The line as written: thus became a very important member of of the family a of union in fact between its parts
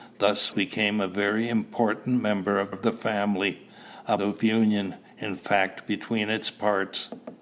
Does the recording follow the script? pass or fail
pass